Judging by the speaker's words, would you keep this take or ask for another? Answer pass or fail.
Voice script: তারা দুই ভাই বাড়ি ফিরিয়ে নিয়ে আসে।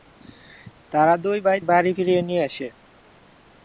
pass